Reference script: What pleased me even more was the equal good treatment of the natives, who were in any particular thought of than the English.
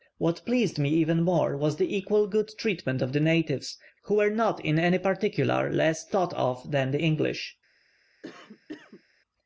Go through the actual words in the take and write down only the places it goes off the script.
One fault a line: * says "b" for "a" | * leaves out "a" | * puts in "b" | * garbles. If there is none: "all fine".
* puts in "not"
* puts in "less"